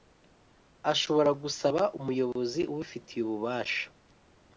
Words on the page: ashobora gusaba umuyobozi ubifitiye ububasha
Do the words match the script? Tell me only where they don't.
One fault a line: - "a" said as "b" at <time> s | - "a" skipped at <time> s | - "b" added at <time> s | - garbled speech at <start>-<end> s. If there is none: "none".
none